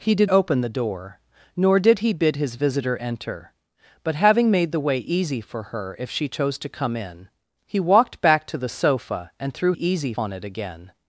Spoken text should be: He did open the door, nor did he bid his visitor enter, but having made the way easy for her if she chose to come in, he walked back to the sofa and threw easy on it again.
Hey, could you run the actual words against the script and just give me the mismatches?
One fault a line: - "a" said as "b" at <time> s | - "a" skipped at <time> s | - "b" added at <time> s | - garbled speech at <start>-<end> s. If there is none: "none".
none